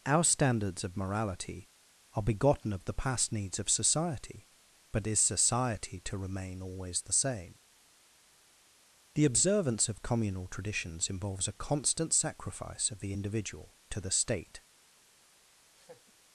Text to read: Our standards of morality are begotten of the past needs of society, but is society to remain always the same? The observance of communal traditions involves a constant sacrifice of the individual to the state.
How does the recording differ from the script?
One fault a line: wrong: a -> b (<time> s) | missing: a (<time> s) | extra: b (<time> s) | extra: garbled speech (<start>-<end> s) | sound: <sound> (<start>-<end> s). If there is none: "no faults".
sound: laugh (15.7-16.1 s)